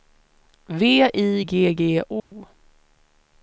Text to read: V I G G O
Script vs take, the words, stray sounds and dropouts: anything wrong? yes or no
yes